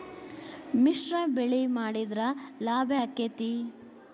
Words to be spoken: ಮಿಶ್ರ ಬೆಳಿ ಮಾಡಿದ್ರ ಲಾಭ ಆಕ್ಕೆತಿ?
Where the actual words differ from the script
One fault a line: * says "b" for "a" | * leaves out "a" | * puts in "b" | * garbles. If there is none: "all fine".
all fine